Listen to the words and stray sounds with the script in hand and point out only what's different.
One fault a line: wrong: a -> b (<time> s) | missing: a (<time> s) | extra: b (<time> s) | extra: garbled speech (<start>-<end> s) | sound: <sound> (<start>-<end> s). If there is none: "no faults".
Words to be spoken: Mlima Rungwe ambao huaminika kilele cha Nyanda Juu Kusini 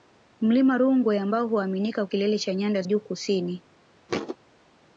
sound: thud (4.1-4.4 s)